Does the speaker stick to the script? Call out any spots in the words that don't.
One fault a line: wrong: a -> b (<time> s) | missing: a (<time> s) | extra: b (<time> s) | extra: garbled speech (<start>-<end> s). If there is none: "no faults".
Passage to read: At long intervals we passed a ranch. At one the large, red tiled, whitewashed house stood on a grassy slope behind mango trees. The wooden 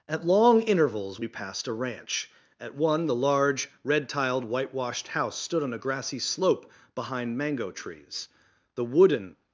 no faults